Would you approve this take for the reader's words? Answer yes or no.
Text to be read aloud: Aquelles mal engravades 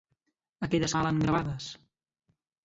yes